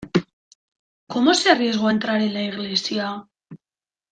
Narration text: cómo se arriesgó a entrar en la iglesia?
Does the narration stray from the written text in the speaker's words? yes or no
no